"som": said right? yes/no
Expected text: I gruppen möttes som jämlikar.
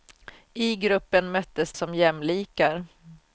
yes